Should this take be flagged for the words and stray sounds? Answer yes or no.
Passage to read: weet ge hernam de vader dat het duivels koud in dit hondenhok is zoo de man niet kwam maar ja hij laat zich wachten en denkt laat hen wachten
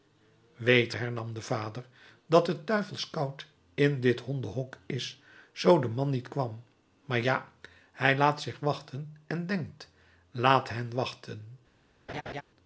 yes